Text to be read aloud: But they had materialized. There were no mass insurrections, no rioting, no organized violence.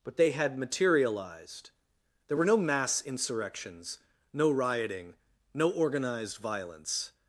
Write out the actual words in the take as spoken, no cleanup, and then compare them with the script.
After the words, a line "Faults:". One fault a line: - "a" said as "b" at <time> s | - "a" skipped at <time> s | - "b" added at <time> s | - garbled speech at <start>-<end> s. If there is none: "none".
But they had materialized. There were no mass insurrections, no rioting, no organized violence.
Faults:
none